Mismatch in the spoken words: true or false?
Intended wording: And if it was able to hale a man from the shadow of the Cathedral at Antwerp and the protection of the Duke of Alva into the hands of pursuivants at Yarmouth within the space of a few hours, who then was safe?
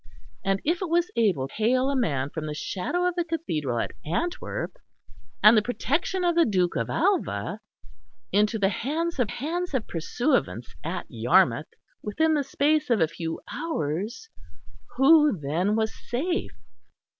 true